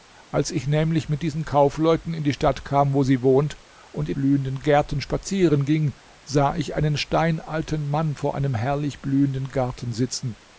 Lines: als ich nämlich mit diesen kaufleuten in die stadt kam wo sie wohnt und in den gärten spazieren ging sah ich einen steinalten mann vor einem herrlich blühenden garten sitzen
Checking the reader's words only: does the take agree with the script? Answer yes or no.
no